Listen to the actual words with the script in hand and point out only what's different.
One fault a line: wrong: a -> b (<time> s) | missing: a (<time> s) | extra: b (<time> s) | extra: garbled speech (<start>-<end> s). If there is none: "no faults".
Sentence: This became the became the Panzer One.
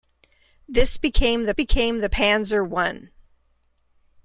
no faults